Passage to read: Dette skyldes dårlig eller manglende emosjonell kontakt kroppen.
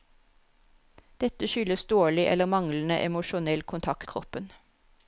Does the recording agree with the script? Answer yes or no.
yes